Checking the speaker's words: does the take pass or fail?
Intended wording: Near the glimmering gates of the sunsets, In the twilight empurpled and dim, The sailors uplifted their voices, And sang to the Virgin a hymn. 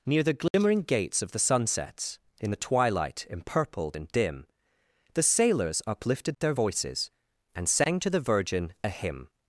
pass